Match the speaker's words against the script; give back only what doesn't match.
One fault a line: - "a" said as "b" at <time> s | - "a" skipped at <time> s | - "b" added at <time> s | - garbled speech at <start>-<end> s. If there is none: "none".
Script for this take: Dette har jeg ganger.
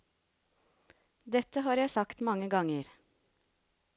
- "sagt mange" added at 1.9 s